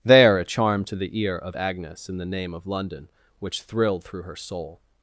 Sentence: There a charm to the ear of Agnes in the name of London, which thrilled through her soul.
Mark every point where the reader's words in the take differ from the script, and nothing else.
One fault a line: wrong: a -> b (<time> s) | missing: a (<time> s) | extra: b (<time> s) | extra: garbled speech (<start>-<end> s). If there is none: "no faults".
no faults